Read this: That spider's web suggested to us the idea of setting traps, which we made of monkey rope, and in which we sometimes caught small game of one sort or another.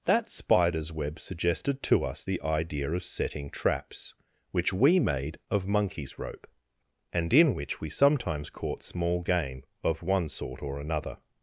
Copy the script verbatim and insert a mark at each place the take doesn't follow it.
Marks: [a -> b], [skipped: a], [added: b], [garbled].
That spider's web suggested to us the idea of setting traps, which we made of [monkey -> monkeys] rope, and in which we sometimes caught small game of one sort or another.